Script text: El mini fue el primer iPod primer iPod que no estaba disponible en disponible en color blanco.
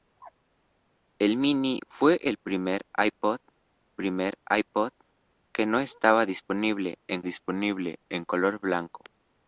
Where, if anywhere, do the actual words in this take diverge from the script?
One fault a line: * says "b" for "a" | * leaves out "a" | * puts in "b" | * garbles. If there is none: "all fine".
all fine